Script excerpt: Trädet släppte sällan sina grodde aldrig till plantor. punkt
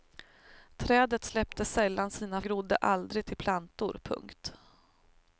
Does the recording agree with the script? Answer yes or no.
yes